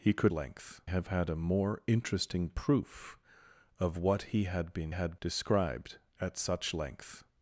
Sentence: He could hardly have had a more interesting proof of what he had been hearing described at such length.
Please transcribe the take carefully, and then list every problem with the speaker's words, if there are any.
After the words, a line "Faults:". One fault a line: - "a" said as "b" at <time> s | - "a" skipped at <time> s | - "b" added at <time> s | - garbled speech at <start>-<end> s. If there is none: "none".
He could length have had a more interesting proof of what he had been had described at such length.
Faults:
- "hardly" said as "length" at 0.3 s
- "hearing" said as "had" at 4.9 s